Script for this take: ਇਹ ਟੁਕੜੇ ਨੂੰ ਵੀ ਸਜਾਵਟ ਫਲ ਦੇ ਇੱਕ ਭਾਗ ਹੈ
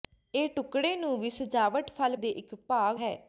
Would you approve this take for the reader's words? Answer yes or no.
yes